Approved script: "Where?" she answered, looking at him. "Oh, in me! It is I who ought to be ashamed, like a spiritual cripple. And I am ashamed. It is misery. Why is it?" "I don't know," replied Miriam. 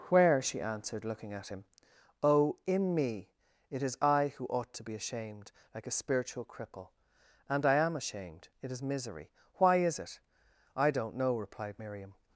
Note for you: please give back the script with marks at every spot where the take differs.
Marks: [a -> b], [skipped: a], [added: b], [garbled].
"Where?" she answered, looking at him. "Oh, in me! It is I who ought to be ashamed, like a spiritual cripple. And I am ashamed. It is misery. Why is it?" "I don't know," replied Miriam.